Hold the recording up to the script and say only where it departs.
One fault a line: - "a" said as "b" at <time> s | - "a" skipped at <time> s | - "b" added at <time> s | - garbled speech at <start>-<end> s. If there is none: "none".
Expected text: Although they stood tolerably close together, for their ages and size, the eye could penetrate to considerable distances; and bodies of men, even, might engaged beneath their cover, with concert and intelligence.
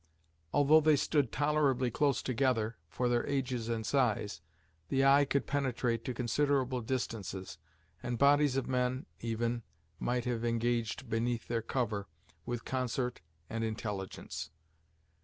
- "have" added at 10.2 s